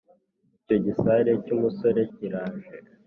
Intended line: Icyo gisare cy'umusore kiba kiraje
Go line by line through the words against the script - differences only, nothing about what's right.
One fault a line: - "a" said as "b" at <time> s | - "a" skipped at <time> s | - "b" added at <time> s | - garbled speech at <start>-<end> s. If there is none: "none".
- "kiba" skipped at 2.0 s